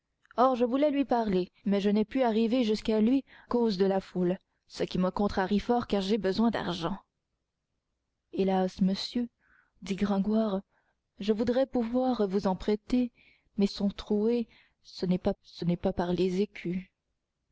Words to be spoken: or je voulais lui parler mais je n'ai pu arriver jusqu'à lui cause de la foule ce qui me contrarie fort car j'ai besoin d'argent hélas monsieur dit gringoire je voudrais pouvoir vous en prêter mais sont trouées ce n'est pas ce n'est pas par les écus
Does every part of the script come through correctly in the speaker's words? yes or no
yes